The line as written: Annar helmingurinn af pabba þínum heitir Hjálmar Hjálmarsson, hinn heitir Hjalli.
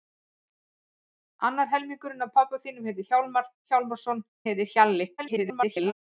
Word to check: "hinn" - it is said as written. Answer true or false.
false